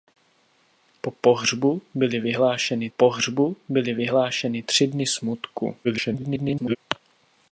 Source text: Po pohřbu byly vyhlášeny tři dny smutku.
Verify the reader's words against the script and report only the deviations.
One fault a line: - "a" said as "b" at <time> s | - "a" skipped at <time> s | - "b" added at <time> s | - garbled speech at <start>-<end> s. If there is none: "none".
- "pohřbu byly vyhlášeny" added at 2.9 s
- garbled speech at 5.8-6.8 s